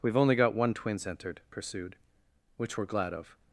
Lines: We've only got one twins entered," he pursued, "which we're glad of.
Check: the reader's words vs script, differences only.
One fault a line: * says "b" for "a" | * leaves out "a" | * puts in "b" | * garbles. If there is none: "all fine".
* leaves out "he"